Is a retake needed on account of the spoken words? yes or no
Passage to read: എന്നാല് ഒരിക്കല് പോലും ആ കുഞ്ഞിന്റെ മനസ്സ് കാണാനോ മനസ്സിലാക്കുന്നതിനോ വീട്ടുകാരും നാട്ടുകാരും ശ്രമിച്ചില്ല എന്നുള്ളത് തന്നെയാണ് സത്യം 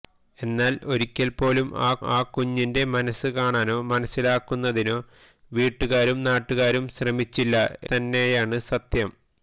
yes